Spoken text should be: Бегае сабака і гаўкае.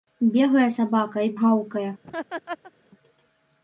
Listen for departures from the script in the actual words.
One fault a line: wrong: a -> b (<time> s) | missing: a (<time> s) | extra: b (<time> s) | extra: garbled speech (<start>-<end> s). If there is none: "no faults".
no faults